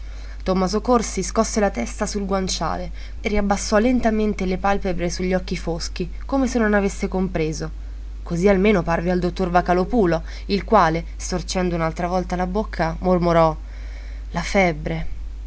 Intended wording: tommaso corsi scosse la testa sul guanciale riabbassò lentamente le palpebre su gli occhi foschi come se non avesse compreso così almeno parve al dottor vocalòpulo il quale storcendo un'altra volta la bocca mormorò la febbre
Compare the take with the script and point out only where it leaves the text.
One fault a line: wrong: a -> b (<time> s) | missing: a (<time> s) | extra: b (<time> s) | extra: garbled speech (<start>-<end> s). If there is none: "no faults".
no faults